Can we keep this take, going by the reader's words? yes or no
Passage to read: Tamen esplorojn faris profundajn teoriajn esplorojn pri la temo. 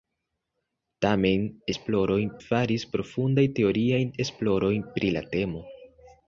yes